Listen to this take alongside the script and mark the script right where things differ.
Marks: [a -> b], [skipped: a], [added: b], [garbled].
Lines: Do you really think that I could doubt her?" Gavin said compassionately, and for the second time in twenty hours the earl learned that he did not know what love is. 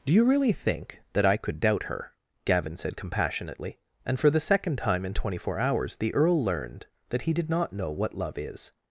Do you really think that I could doubt her?" Gavin said compassionately, and for the second time in twenty [added: four] hours the earl learned that he did not know what love is.